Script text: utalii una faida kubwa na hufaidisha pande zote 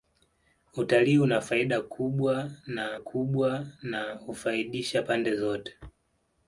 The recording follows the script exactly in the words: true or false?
false